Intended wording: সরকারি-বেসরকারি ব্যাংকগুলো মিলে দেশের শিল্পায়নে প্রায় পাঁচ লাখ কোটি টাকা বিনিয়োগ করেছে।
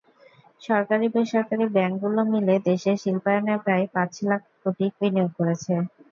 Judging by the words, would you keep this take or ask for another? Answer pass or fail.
fail